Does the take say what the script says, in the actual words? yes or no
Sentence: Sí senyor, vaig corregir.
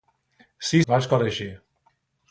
no